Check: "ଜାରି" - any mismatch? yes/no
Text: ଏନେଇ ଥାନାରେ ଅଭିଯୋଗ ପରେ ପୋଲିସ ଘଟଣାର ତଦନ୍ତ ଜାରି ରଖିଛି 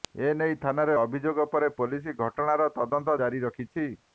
no